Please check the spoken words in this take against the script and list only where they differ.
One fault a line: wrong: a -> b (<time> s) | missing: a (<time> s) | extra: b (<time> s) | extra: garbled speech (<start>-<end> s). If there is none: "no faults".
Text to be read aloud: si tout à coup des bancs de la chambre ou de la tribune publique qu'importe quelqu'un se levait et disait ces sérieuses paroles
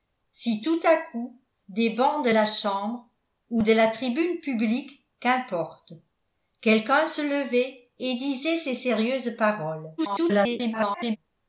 extra: garbled speech (10.0-11.2 s)